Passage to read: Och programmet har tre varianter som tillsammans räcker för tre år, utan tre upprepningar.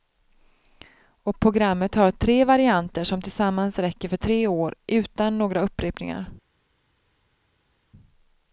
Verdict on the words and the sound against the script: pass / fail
fail